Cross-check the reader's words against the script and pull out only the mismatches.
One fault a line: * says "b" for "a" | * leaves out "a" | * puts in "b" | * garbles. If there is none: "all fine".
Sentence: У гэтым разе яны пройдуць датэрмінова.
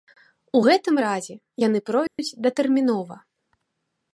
all fine